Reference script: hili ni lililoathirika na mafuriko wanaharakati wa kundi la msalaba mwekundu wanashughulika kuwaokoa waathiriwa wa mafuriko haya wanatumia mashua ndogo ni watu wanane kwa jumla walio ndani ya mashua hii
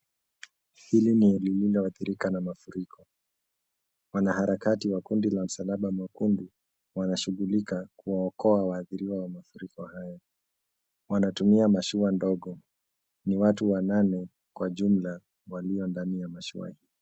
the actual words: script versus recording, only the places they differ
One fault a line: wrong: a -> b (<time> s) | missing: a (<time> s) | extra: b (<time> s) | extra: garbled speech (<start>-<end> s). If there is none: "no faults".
no faults